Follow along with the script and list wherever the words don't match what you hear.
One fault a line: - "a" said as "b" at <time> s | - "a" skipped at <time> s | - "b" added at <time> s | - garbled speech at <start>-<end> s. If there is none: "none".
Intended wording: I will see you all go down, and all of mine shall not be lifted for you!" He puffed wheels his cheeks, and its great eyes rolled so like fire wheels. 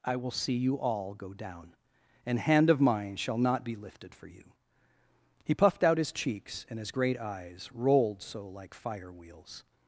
- "all" said as "hand" at 2.4 s
- "wheels" said as "out" at 5.8 s
- "its" said as "his" at 6.8 s